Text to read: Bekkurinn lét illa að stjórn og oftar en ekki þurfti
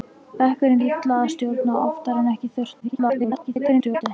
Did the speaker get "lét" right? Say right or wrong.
wrong